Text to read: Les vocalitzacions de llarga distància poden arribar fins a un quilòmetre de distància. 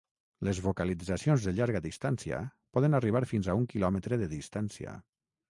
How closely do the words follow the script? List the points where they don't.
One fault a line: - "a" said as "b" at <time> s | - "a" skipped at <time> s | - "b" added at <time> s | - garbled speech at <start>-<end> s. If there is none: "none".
none